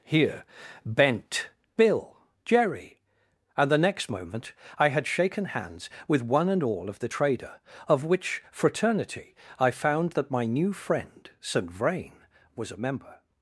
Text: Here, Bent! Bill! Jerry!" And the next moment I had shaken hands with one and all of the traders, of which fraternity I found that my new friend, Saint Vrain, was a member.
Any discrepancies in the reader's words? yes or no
yes